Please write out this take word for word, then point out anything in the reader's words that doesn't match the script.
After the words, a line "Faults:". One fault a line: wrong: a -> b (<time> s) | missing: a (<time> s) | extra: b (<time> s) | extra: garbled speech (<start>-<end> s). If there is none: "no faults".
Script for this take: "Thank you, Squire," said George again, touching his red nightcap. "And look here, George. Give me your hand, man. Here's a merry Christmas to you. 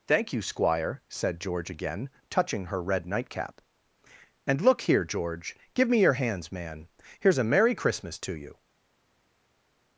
"Thank you, Squire," said George again, touching her red nightcap. "And look here, George. Give me your hands, man. Here's a merry Christmas to you.
Faults:
wrong: his -> her (2.6 s)
wrong: hand -> hands (6.1 s)